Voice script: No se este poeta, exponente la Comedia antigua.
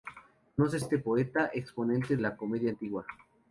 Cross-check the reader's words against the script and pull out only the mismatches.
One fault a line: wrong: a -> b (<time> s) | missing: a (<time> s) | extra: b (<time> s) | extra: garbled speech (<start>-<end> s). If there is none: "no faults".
no faults